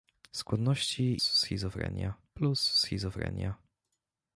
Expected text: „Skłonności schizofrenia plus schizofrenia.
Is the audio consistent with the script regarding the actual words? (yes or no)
yes